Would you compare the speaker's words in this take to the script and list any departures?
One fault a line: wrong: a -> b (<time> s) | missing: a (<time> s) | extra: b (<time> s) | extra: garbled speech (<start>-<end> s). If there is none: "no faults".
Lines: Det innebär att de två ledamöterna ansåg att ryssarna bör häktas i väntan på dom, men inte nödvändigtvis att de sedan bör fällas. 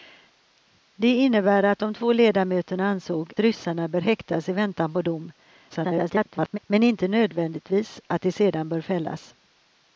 missing: att (3.3 s)
extra: garbled speech (5.7-6.6 s)